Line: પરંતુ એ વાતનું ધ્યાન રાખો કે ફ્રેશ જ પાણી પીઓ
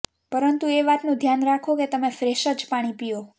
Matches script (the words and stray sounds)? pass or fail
fail